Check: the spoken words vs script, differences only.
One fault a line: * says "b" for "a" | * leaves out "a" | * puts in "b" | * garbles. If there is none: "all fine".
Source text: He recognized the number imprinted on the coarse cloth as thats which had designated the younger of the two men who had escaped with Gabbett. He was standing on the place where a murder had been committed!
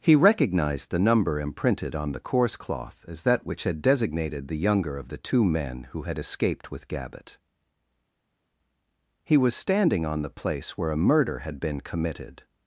* says "that" for "thats"